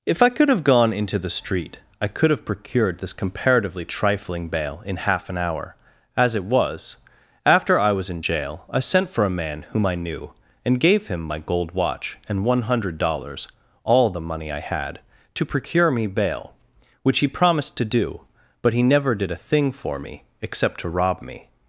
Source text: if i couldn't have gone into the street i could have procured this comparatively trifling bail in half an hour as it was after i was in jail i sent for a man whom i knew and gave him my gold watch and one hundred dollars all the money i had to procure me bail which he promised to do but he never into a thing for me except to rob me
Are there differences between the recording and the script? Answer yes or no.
yes